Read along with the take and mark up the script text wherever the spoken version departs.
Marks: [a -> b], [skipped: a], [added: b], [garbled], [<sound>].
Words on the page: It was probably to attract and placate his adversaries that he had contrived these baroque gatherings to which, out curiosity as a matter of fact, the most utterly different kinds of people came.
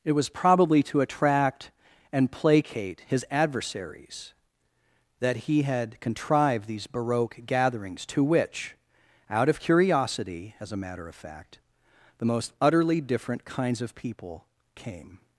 It was probably to attract and placate his adversaries that he had contrived these baroque gatherings to which, out [added: of] curiosity as a matter of fact, the most utterly different kinds of people came.